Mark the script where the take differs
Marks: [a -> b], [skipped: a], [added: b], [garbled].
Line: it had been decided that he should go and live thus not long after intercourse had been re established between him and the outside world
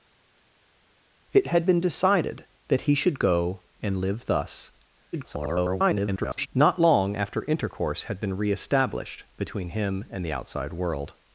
it had been decided that he should go and live thus [garbled] not long after intercourse had been re established between him and the outside world